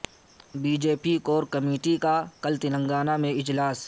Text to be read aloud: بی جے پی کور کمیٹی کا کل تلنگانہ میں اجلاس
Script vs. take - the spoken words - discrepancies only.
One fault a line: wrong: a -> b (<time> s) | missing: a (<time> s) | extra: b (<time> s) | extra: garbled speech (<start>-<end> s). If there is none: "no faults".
no faults